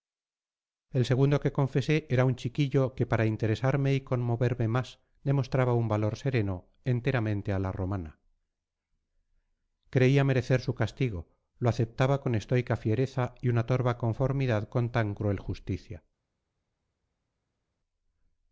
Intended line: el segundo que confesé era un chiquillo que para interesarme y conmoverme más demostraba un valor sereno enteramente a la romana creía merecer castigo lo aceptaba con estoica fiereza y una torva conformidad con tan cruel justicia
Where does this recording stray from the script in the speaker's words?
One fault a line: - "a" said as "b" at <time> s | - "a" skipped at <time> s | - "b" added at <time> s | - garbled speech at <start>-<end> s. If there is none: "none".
- "su" added at 10.6 s